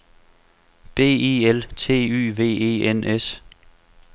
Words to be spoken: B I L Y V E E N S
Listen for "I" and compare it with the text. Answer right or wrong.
right